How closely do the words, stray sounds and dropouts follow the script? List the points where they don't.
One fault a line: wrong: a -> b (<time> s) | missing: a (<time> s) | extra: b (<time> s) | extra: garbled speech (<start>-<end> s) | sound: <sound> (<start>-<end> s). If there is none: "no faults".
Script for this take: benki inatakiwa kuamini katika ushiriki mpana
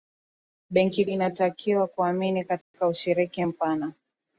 sound: dropout (2.6-2.7 s)